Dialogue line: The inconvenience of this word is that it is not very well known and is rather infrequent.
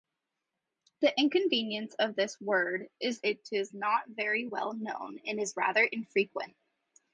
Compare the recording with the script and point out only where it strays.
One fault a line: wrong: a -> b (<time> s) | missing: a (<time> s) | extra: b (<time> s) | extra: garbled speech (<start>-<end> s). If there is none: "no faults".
missing: that (3.2 s)